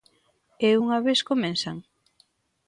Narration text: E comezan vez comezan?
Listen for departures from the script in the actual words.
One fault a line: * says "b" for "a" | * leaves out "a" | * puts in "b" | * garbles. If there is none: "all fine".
* says "unha" for "comezan"